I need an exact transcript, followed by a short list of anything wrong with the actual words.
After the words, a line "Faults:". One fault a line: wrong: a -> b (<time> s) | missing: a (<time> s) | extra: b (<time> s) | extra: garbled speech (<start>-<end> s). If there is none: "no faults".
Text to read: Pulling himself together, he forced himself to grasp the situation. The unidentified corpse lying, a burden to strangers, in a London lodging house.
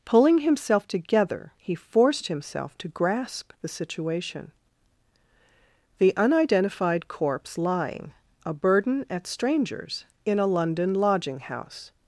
Pulling himself together, he forced himself to grasp the situation. The unidentified corpse lying, a burden at strangers, in a London lodging house.
Faults:
wrong: to -> at (9.1 s)